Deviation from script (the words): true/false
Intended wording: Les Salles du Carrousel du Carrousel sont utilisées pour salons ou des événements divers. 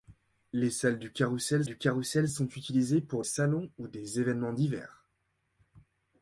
false